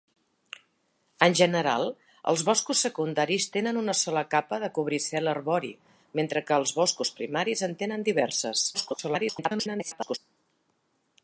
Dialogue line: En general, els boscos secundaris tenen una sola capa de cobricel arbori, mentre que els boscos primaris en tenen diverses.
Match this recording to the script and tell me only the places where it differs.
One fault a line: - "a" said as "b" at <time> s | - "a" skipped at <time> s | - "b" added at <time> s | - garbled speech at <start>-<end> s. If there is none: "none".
- garbled speech at 8.7-10.2 s